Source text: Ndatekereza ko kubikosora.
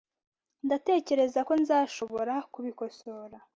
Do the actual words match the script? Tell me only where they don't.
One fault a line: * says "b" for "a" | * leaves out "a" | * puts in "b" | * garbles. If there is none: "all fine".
* puts in "nzashobora"